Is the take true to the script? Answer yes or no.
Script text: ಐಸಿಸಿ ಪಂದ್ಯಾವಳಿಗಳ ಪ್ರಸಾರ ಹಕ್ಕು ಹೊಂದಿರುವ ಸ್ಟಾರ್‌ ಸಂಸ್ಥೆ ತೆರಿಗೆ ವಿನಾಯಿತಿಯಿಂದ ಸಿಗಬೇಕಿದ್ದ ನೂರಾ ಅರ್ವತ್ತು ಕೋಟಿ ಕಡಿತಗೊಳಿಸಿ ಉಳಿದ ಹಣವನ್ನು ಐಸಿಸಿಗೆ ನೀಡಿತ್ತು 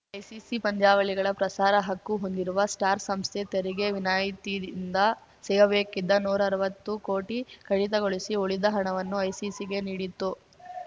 yes